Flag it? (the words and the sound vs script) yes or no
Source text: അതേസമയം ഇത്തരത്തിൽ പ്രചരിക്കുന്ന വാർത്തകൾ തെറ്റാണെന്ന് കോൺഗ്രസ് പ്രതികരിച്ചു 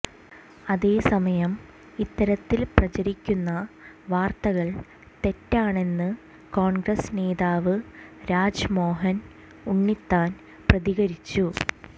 yes